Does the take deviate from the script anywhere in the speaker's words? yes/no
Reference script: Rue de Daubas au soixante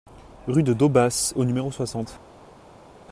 yes